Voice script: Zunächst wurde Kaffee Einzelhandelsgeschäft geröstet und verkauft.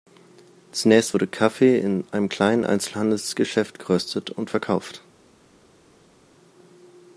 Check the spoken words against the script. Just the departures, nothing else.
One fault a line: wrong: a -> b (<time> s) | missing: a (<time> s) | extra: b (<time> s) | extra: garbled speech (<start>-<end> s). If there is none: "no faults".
extra: in einem kleinen (1.7 s)